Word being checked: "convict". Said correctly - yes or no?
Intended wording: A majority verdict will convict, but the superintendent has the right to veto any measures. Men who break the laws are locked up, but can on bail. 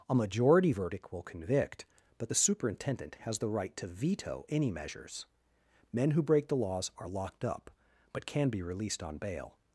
yes